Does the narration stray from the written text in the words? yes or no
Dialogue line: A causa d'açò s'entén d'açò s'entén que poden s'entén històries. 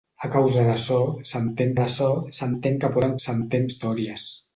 no